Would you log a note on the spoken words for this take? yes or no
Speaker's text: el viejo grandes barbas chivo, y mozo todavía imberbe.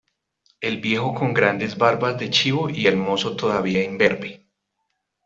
yes